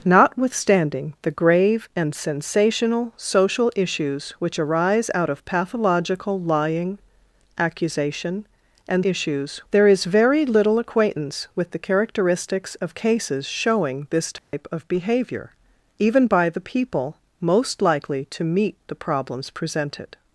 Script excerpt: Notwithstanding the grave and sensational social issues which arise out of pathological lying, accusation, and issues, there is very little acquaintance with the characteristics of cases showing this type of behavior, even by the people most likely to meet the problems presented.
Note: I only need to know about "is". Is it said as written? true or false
true